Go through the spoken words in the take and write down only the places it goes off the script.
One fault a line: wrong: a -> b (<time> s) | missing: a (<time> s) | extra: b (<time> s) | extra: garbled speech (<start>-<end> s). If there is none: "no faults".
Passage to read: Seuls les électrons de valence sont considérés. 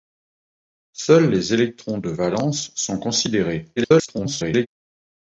extra: garbled speech (3.8-4.7 s)